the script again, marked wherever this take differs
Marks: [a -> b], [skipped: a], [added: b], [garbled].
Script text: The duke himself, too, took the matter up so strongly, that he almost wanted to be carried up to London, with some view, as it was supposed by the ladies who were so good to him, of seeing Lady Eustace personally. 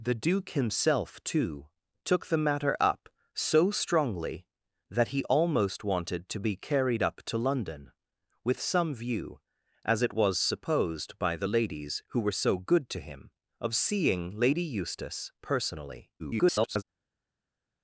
The duke himself, too, took the matter up so strongly, that he almost wanted to be carried up to London, with some view, as it was supposed by the ladies who were so good to him, of seeing Lady Eustace personally. [garbled]